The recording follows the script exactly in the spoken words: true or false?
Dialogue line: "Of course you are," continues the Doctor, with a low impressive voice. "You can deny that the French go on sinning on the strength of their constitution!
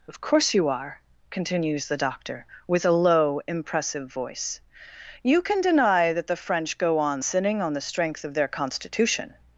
true